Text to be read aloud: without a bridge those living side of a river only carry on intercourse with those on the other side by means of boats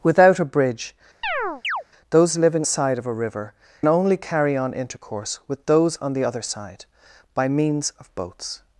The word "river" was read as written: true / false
true